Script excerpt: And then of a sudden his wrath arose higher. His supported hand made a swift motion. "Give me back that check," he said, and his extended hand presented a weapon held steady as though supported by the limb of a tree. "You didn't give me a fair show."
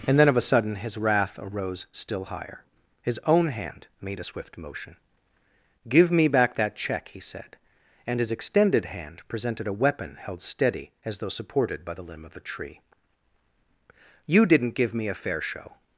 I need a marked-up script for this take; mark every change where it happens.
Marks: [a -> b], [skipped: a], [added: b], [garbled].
And then of a sudden his wrath arose [added: still] higher. His [supported -> own] hand made a swift motion. "Give me back that check," he said, and his extended hand presented a weapon held steady as though supported by the limb of a tree. "You didn't give me a fair show."